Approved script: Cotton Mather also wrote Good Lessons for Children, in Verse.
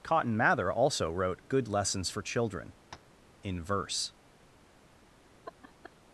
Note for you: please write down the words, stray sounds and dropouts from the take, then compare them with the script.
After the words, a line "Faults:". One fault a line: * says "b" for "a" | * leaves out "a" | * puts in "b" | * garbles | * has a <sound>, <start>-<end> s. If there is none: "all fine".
Cotton Mather also wrote Good Lessons for Children, in Verse.
Faults:
* has a tap, 2.9-3.2 s
* has a laugh, 5.4-6.0 s